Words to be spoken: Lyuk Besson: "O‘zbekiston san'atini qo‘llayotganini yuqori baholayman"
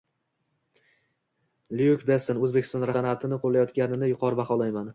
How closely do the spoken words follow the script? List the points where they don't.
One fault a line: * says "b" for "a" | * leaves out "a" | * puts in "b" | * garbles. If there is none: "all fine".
all fine